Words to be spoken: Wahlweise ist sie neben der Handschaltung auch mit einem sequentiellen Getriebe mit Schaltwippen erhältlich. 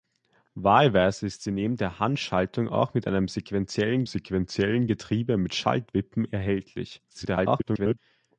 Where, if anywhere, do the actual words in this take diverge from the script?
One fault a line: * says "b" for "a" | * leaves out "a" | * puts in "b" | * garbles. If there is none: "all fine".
* puts in "sequentiellen"
* garbles